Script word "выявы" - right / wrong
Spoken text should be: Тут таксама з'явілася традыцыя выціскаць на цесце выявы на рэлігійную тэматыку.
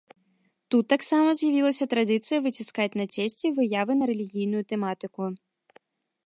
right